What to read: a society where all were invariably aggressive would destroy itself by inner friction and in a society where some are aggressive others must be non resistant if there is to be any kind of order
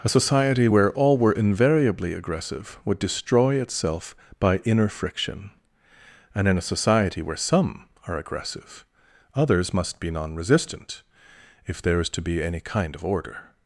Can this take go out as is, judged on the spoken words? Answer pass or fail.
pass